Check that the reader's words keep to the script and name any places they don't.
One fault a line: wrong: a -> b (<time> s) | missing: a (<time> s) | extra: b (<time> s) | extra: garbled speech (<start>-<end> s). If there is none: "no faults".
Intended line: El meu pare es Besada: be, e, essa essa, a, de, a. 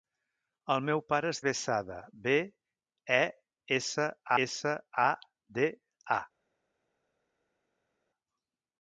no faults